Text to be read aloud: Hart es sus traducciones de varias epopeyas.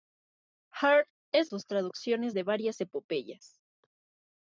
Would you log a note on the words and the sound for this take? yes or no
no